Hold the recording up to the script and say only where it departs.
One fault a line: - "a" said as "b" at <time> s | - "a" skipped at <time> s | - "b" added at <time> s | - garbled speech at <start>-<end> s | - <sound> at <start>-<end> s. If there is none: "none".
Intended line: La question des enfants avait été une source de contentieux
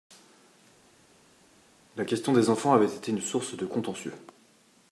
none